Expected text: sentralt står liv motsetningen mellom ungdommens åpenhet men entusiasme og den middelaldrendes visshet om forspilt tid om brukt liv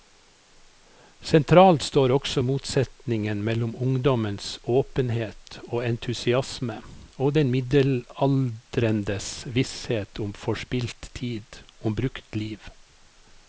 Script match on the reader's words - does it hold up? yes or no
no